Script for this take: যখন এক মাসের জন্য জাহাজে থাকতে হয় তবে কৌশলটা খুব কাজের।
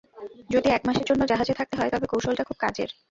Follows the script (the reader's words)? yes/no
no